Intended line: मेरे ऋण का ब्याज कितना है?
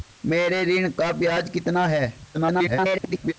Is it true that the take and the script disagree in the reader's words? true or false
true